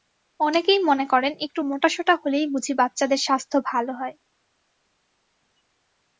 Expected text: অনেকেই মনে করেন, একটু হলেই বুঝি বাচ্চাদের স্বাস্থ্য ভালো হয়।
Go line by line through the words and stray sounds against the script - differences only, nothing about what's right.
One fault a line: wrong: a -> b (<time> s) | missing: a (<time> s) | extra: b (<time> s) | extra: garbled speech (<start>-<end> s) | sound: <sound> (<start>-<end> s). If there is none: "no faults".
extra: মোটাসোটা (1.6 s)